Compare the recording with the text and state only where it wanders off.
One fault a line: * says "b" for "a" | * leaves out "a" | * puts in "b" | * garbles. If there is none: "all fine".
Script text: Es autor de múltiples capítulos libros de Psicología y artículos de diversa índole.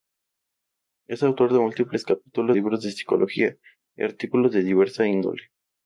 all fine